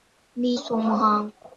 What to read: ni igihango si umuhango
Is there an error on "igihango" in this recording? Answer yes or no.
yes